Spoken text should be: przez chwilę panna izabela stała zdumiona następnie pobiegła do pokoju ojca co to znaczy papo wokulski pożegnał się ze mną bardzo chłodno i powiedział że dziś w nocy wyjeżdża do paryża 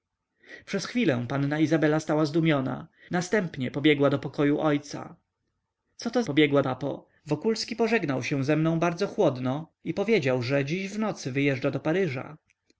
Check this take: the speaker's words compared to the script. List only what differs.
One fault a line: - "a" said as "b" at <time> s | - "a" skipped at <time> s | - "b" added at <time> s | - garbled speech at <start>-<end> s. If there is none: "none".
- "znaczy" said as "pobiegła" at 6.2 s